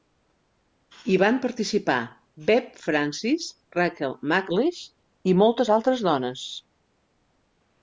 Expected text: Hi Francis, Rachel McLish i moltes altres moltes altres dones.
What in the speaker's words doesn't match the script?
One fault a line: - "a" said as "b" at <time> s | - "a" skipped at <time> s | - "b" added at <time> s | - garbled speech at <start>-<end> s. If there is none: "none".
- "van participar Bev" added at 1.2 s
- "moltes altres" skipped at 6.1 s